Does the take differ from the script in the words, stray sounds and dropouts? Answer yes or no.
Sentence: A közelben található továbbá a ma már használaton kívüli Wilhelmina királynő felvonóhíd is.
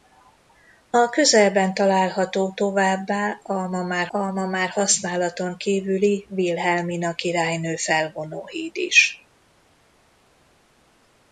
yes